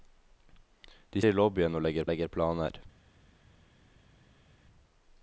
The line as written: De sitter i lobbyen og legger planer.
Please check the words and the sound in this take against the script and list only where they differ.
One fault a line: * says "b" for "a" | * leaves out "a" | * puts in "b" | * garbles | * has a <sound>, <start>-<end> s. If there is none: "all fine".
* leaves out "sitter"
* puts in "legger"